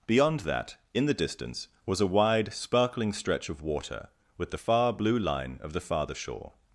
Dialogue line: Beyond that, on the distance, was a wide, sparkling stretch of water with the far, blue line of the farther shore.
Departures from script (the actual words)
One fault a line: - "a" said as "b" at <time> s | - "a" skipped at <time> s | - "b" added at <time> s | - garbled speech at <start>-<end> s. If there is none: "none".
- "on" said as "in" at 0.9 s